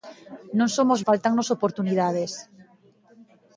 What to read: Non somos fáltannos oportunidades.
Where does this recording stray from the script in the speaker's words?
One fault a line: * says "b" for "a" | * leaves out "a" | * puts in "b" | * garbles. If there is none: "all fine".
all fine